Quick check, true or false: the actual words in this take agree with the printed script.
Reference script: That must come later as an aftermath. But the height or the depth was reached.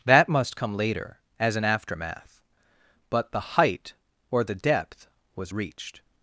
true